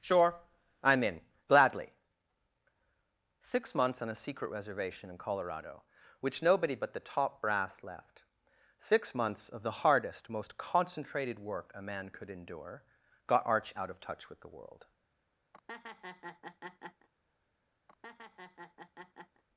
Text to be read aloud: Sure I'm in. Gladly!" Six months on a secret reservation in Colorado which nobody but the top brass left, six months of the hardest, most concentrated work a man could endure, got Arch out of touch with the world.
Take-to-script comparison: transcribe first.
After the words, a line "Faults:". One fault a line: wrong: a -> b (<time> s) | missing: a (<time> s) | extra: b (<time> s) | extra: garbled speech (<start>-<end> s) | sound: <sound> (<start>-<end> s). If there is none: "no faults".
Sure I'm in. Gladly!" Six months on a secret reservation in Colorado which nobody but the top brass left, six months of the hardest, most concentrated work a man could endure, got Arch out of touch with the world.
Faults:
sound: laugh (15.5-17.1 s)
sound: laugh (17.9-19.4 s)